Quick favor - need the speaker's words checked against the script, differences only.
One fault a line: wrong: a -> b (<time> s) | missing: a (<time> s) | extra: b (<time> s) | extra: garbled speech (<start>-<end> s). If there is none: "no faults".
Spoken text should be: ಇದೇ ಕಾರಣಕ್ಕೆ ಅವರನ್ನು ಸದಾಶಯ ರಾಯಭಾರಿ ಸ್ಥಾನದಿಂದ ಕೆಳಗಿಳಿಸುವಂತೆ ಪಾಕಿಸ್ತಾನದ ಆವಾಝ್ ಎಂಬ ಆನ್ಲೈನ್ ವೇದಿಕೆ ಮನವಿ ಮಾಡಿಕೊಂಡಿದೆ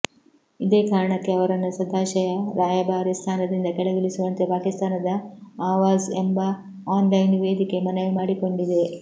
no faults